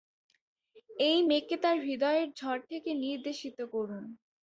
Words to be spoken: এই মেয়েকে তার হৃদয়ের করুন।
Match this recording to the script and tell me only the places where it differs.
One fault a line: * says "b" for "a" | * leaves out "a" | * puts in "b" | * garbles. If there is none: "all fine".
* puts in "ঝড় থেকে নির্দেশিত"